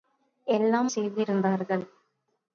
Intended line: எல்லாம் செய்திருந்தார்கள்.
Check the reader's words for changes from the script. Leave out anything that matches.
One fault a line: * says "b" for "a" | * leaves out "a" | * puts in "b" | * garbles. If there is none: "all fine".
all fine